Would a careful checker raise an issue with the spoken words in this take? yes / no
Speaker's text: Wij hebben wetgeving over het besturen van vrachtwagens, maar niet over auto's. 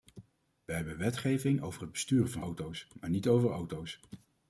yes